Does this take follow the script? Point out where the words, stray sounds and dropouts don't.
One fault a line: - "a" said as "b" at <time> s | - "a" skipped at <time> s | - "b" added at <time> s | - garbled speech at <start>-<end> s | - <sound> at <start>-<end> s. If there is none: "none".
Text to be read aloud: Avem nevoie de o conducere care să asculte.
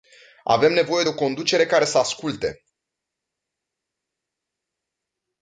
none